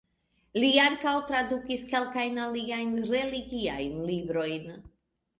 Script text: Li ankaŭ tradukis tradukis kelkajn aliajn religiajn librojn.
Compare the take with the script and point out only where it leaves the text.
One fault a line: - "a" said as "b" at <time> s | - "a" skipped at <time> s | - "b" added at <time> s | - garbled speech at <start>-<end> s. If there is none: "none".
- "tradukis" skipped at 1.8 s